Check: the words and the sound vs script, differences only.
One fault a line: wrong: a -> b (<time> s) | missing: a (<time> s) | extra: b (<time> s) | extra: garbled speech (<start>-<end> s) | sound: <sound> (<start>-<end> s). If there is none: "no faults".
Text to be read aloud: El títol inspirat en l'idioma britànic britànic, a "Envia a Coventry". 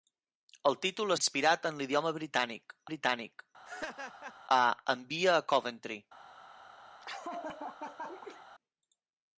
sound: laugh (3.7-4.4 s)
sound: laugh (7.0-8.5 s)